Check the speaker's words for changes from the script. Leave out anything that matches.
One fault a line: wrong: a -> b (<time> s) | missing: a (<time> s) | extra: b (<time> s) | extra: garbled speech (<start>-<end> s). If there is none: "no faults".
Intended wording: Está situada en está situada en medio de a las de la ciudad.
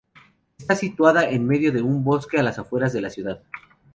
wrong: está situada en medio de -> medio de un bosque (1.4 s)
extra: afueras (2.6 s)